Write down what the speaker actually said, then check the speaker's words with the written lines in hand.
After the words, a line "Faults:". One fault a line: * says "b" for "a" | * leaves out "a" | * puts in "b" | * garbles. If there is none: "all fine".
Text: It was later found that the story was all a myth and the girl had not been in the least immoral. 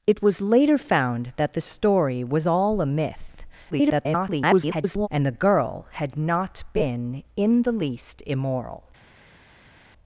It was later found that the story was all a myth [garbled] and the girl had not been in the least immoral.
Faults:
* garbles